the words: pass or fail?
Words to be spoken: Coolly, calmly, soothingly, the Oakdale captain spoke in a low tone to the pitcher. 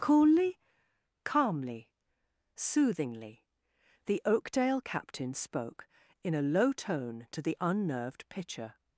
fail